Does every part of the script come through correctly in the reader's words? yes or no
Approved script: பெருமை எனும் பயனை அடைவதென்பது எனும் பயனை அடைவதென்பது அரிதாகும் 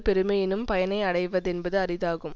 no